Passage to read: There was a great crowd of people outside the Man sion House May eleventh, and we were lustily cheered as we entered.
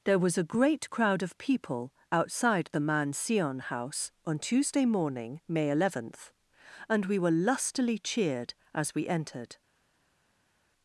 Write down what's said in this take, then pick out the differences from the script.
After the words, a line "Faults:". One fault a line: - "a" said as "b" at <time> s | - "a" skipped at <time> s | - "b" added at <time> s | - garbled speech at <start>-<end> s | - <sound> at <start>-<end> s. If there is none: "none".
There was a great crowd of people outside the Man sion House on Tuesday morning, May eleventh, and we were lustily cheered as we entered.
Faults:
- "on Tuesday morning" added at 4.2 s